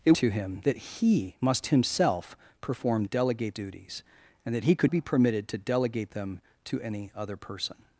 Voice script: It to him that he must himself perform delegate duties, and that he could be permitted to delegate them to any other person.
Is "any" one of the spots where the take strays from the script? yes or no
no